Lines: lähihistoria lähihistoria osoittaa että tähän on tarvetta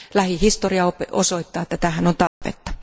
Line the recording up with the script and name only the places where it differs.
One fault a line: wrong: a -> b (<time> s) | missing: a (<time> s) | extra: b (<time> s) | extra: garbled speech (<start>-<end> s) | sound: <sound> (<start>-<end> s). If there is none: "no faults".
missing: lähihistoria (0.9 s)
sound: dropout (2.3-2.4 s)